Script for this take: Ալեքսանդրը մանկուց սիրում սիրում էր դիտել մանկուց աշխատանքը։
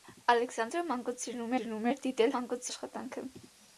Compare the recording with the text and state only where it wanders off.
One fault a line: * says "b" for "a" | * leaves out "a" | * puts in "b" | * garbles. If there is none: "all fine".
all fine